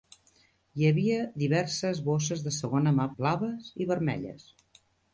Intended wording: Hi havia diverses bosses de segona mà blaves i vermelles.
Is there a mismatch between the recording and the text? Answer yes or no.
no